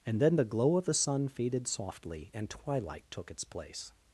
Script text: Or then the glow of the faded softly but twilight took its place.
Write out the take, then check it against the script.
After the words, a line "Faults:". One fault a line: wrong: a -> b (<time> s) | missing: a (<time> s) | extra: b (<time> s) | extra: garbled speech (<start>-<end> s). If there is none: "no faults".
And then the glow of the sun faded softly and twilight took its place.
Faults:
wrong: Or -> And (0.1 s)
extra: sun (0.9 s)
wrong: but -> and (2.3 s)